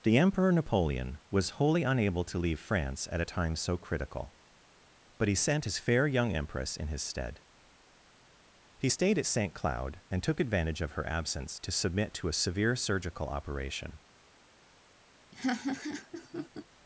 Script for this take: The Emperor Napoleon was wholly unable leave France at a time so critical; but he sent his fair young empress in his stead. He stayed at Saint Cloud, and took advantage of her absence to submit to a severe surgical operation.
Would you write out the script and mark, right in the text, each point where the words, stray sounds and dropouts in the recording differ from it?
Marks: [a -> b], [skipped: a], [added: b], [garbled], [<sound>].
The Emperor Napoleon was wholly unable [added: to] leave France at a time so critical; but he sent his fair young empress in his stead. He stayed at Saint Cloud, and took advantage of her absence to submit to a severe surgical operation. [laugh]